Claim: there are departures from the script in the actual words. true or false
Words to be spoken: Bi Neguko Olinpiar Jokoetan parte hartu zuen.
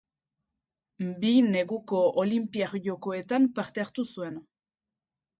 false